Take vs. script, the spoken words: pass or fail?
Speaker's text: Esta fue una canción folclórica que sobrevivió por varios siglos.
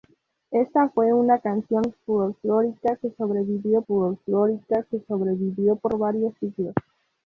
fail